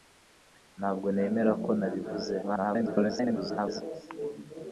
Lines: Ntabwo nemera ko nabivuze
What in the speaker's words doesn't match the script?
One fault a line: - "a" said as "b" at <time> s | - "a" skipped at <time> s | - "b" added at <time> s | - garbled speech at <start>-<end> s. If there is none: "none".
- garbled speech at 2.4-3.8 s